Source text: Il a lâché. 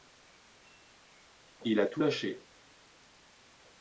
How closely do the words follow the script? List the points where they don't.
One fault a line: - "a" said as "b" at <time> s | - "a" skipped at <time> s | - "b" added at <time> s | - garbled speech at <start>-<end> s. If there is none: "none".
- "tout" added at 1.8 s